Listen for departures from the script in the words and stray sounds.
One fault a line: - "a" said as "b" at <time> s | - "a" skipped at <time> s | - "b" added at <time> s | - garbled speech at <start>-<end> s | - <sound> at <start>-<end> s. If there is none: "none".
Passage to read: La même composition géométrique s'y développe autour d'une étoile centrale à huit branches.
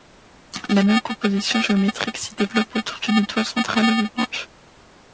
none